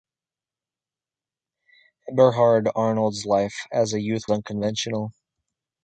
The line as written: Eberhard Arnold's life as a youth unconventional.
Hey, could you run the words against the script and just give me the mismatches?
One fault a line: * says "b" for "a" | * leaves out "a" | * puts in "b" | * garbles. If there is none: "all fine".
all fine